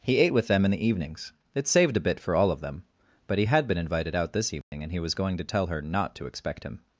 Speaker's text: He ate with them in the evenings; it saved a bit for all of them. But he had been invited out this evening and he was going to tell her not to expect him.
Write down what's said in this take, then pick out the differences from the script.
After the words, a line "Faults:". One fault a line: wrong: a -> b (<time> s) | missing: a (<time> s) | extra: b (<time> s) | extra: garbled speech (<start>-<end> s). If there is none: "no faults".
He ate with them in the evenings; it saved a bit for all of them. But he had been invited out this evening and he was going to tell her not to expect him.
Faults:
no faults